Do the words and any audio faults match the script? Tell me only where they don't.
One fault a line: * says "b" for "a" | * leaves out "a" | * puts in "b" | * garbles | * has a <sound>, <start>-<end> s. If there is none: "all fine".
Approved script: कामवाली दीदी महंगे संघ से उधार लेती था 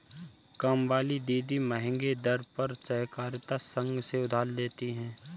* puts in "दर पर सहकारिता"
* says "है" for "था"